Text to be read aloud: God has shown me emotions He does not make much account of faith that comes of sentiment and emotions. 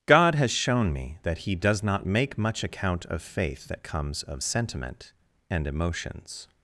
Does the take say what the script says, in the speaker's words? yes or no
no